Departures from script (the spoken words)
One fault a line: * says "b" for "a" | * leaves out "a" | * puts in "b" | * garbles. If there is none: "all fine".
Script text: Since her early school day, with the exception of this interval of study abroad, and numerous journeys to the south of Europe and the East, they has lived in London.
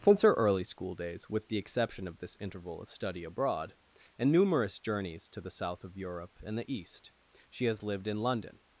* says "days" for "day"
* says "she" for "they"